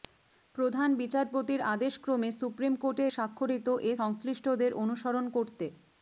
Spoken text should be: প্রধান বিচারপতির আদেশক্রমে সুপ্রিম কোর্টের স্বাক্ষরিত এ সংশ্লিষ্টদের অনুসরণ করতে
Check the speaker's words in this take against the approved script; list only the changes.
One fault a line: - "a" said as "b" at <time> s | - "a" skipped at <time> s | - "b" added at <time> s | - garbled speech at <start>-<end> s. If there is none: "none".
none